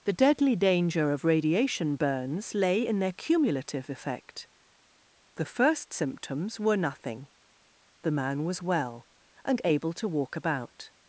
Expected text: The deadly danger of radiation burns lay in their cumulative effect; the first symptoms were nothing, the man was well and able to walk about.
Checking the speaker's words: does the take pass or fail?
pass